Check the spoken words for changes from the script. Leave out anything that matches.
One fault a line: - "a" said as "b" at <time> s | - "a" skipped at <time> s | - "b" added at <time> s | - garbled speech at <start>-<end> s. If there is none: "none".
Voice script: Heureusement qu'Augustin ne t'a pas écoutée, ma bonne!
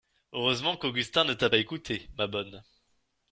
none